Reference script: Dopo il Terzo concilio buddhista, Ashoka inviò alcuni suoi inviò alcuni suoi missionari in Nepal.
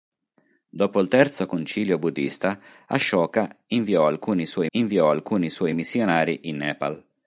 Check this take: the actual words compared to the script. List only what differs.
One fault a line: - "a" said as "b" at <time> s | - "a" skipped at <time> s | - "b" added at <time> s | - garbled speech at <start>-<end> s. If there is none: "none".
none